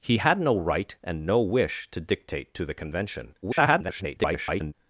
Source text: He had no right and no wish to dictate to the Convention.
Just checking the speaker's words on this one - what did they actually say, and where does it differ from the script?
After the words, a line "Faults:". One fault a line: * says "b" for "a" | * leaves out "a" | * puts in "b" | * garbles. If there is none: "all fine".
He had no right and no wish to dictate to the Convention. [garbled]
Faults:
* garbles